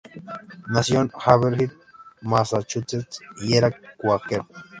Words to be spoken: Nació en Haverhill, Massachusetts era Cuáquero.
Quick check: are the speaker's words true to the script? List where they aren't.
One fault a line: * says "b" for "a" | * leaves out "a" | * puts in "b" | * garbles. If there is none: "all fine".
* puts in "y"